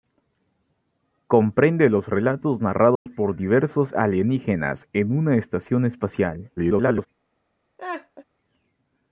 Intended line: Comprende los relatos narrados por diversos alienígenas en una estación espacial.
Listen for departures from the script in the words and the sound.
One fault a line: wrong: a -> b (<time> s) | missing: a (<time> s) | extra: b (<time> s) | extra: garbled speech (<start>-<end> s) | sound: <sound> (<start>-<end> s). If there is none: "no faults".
sound: dropout (3.0-3.1 s)
extra: garbled speech (6.6-7.1 s)
sound: laugh (7.8-8.2 s)